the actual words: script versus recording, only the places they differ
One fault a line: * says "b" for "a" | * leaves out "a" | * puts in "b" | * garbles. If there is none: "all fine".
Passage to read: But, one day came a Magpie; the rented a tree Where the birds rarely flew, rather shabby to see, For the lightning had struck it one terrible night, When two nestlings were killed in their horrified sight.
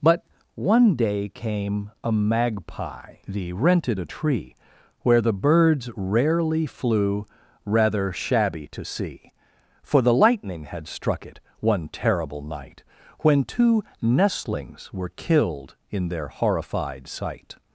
all fine